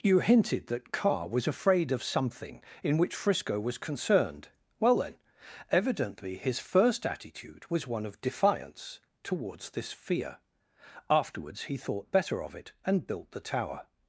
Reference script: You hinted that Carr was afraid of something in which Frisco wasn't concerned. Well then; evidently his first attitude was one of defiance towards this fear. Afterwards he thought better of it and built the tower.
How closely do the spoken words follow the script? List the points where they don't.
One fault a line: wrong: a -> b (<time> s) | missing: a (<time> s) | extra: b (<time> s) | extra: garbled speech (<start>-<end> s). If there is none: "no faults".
wrong: wasn't -> was (3.6 s)